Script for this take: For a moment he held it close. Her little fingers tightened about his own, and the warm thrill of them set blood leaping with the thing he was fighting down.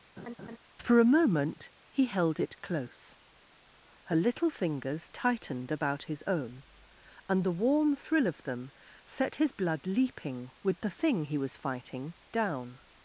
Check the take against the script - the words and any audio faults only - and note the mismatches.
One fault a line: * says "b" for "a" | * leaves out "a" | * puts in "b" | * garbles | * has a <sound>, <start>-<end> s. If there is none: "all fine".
* has a laugh, 0.2-0.6 s
* puts in "his"